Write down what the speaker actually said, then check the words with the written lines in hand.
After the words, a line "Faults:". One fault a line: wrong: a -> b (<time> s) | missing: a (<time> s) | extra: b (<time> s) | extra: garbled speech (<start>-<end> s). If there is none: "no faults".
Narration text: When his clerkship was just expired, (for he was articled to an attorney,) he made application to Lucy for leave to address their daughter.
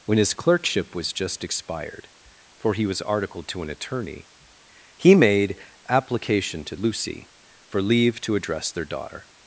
When his clerkship was just expired, (for he was articled to an attorney,) he made application to Lucy for leave to address their daughter.
Faults:
no faults